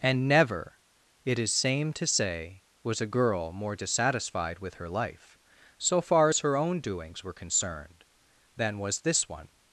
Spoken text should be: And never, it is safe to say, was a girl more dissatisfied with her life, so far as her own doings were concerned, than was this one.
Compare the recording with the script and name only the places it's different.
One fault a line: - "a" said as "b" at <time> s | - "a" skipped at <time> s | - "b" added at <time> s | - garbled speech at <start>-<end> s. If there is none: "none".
- "safe" said as "same" at 1.5 s